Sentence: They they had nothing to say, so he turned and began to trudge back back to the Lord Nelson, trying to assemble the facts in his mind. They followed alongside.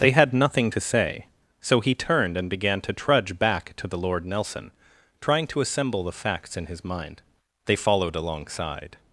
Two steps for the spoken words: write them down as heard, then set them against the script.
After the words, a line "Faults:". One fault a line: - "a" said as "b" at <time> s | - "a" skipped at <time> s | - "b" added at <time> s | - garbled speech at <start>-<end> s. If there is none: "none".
They had nothing to say, so he turned and began to trudge back to the Lord Nelson, trying to assemble the facts in his mind. They followed alongside.
Faults:
- "they" skipped at 0.1 s
- "back" skipped at 3.7 s